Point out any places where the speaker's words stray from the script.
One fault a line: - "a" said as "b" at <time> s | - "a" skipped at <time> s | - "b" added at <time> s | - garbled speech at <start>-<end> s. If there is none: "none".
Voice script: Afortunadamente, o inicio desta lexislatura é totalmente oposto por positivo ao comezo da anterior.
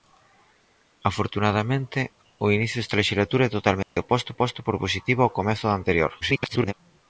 - "oposto" added at 4.3 s
- garbled speech at 6.2-6.7 s